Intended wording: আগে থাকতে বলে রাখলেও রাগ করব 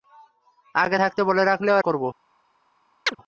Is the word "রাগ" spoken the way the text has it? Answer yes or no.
no